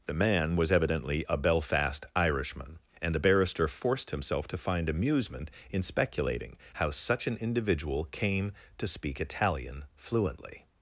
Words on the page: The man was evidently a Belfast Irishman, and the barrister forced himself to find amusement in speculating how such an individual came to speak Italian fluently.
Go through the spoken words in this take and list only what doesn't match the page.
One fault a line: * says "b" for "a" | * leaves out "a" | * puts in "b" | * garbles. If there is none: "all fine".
all fine